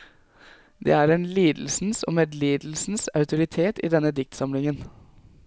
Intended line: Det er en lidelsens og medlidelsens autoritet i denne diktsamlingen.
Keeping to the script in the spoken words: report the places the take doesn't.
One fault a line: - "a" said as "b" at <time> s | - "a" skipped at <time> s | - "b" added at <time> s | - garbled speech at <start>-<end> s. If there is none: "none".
none